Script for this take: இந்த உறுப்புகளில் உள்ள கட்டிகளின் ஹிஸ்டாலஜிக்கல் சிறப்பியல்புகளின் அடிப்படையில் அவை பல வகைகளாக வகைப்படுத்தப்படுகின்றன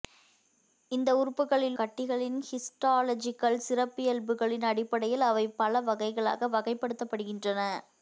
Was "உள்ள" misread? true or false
true